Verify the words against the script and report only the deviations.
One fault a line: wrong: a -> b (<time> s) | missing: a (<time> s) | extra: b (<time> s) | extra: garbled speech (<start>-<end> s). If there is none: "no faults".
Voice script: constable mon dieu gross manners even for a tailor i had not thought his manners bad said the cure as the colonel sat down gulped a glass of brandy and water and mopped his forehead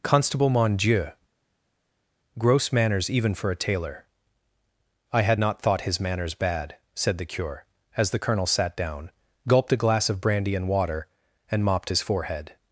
no faults